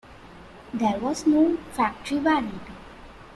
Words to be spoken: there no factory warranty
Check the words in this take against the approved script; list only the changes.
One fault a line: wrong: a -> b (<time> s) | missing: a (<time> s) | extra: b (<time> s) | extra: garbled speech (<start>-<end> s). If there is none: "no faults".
extra: was (1.0 s)